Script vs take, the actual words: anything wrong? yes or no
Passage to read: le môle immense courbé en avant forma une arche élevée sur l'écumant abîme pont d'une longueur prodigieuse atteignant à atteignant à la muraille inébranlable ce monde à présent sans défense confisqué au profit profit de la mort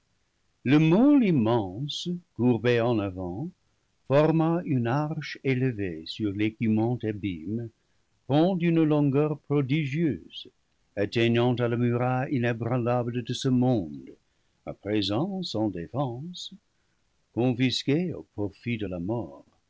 yes